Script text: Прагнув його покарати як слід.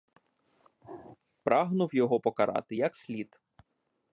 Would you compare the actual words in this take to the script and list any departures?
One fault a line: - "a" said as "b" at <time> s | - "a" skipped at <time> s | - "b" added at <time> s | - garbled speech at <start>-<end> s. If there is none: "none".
none